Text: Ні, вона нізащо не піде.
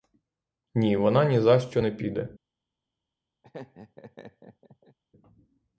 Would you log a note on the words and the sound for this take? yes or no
yes